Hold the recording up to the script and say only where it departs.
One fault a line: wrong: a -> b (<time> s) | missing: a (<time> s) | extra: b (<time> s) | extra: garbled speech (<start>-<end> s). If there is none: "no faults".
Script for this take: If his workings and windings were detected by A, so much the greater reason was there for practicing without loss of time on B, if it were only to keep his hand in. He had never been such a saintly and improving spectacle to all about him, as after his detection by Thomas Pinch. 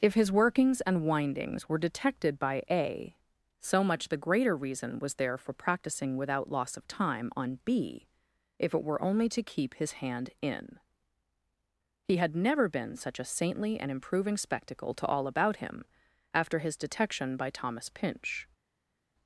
missing: as (15.8 s)